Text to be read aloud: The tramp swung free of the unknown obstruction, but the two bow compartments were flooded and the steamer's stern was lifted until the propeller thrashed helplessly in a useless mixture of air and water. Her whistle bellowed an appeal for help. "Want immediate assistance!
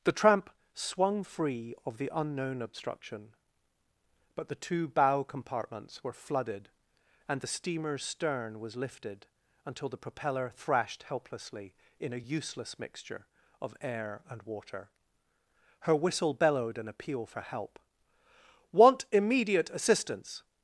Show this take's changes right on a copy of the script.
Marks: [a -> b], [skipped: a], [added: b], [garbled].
The tramp swung free of the unknown obstruction, but the two bow compartments were flooded and the steamer's stern was lifted until the propeller thrashed helplessly in a useless mixture of air and water. Her whistle bellowed an appeal for help. "Want immediate assistance!